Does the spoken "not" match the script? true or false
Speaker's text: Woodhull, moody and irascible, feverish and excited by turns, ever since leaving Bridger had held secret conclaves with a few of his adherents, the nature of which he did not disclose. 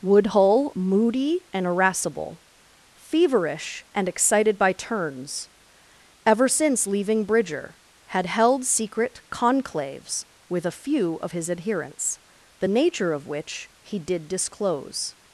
false